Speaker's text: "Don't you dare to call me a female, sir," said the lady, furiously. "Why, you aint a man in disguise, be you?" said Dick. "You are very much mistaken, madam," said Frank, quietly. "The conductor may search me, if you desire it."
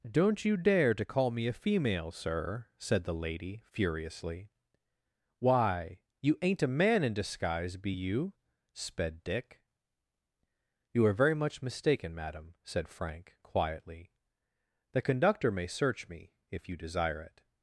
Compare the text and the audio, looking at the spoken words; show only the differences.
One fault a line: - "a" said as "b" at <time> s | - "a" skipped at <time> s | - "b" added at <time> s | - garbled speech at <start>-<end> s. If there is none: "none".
- "said" said as "sped" at 8.7 s